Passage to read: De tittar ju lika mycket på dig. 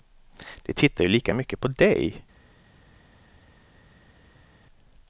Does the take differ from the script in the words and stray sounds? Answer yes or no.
no